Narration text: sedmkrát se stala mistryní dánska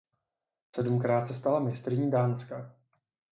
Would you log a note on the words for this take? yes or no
no